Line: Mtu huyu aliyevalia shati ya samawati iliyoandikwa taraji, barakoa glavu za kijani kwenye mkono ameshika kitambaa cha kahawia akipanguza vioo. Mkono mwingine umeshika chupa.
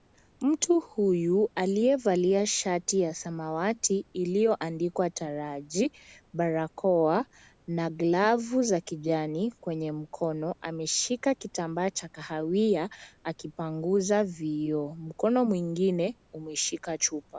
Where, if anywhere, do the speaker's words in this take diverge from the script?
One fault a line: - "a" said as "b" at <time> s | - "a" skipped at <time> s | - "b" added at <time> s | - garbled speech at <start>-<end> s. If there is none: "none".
- "na" added at 7.7 s